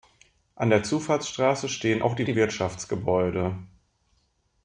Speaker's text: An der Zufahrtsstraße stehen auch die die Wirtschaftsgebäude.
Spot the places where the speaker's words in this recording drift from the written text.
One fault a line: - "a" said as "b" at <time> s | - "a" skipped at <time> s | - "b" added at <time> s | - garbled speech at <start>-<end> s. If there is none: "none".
none